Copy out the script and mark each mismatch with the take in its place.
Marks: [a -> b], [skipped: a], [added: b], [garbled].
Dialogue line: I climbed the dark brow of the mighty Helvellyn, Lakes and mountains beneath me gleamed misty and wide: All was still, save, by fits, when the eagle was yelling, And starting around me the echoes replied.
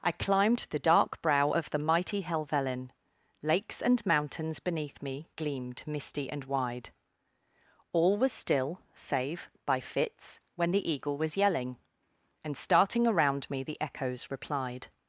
I climbed the dark brow of the mighty Helvellyn, Lakes and mountains beneath me gleamed misty and wide: All was still, save, by fits, when the eagle was yelling, And starting around me the echoes replied.